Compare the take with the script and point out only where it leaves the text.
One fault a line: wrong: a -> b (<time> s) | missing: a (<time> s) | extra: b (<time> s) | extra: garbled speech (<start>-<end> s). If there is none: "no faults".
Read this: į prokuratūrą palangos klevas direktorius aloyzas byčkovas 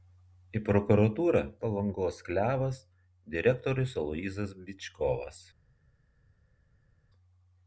no faults